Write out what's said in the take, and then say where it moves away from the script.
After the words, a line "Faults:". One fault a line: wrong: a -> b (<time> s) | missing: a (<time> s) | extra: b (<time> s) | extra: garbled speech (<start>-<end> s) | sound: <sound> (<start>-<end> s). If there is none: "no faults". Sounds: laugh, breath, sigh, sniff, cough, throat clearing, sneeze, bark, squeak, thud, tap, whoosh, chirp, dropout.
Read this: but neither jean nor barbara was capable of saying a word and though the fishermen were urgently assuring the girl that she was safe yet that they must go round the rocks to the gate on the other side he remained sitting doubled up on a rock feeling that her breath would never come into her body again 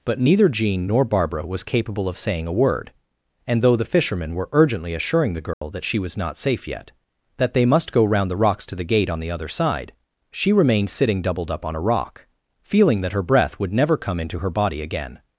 but neither jean nor barbara was capable of saying a word and though the fishermen were urgently assuring the girl that she was not safe yet that they must go round the rocks to the gate on the other side she remained sitting doubled up on a rock feeling that her breath would never come into her body again
Faults:
sound: dropout (5.5-5.6 s)
extra: not (6.2 s)
wrong: he -> she (10.3 s)